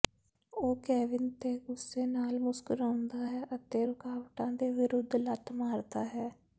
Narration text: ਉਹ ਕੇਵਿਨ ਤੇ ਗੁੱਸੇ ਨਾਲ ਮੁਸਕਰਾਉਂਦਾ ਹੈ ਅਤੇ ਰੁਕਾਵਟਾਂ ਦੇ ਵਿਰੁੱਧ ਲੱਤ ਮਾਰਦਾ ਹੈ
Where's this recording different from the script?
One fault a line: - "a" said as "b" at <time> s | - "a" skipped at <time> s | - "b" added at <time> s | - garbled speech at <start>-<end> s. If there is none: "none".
none